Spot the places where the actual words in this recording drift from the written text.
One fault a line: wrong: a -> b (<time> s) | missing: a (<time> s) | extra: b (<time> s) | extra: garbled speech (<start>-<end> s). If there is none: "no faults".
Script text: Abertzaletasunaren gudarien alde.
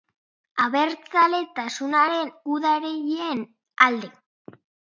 no faults